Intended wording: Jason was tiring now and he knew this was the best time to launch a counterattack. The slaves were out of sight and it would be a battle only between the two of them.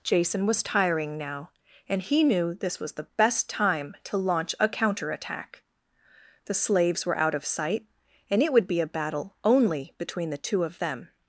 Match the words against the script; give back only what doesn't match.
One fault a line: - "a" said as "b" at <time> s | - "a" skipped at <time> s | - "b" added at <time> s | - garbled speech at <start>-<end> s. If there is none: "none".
none